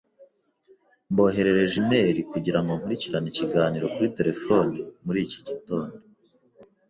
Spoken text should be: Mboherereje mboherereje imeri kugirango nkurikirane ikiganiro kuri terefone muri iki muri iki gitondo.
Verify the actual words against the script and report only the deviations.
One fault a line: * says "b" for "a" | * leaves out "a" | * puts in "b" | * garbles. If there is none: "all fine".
* leaves out "mboherereje"
* leaves out "muri iki"